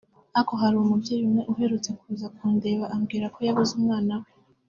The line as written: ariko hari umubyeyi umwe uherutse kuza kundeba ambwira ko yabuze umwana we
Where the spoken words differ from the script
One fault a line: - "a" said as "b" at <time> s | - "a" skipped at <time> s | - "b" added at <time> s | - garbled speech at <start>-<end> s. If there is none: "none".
none